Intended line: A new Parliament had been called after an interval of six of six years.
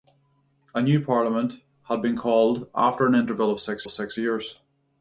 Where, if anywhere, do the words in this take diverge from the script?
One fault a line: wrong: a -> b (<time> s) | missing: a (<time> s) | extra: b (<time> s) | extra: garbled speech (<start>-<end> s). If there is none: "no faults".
no faults